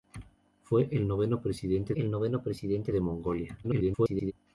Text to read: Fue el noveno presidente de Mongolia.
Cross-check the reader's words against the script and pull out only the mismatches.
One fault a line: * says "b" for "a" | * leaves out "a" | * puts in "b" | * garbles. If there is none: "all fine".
* puts in "el noveno presidente"
* garbles